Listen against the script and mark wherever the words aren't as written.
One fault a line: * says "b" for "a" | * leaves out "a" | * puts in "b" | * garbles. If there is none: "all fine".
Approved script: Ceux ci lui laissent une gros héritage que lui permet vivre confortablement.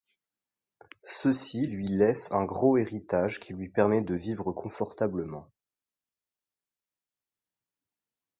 * says "un" for "une"
* says "qui" for "que"
* puts in "de"